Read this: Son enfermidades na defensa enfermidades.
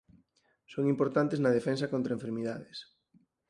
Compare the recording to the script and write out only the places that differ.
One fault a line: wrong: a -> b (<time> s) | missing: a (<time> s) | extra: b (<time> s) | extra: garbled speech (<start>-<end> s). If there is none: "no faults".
wrong: enfermidades -> importantes (0.9 s)
extra: contra (1.9 s)